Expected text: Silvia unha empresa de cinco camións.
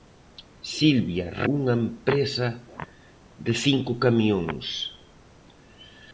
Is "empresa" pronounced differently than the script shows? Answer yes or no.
no